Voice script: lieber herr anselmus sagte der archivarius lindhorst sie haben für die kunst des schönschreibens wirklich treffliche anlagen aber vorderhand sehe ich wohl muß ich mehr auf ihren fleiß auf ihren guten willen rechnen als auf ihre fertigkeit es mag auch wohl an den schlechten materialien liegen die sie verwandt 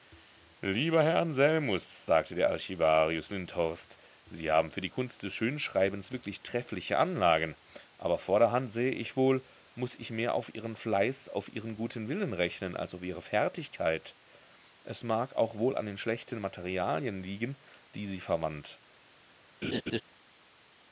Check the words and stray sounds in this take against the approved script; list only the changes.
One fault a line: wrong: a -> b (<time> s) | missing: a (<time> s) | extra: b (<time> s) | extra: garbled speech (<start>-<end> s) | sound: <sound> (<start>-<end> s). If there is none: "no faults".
sound: laugh (19.6-20.0 s)